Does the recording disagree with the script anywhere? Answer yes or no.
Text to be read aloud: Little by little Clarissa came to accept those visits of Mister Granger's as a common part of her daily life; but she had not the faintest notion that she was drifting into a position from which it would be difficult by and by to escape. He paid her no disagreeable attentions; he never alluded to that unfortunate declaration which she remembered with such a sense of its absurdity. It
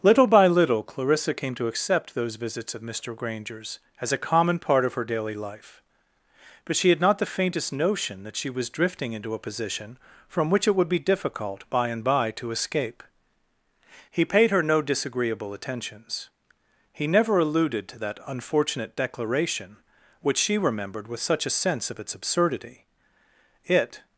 no